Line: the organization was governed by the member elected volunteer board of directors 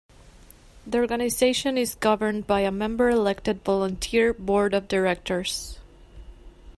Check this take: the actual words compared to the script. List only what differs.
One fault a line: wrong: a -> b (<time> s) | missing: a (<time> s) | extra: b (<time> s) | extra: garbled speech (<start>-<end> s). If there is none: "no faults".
wrong: was -> is (1.8 s)
wrong: the -> a (2.6 s)